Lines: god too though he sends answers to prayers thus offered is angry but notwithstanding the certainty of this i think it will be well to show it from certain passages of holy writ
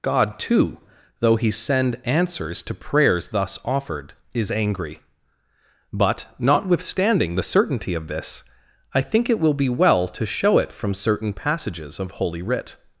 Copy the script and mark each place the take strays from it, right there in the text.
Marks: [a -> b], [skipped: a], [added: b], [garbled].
god too though he [sends -> send] answers to prayers thus offered is angry but notwithstanding the certainty of this i think it will be well to show it from certain passages of holy writ